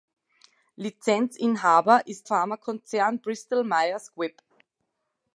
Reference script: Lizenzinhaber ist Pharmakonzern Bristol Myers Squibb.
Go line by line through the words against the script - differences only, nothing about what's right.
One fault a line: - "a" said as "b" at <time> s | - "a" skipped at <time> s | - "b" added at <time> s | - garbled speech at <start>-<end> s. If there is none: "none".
none